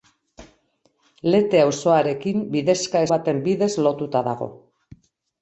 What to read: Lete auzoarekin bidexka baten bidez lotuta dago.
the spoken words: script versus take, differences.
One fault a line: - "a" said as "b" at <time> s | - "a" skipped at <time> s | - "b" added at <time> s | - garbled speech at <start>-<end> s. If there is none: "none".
none